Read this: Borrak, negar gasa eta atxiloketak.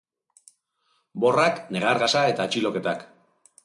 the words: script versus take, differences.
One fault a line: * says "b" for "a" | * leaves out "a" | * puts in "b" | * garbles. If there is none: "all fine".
all fine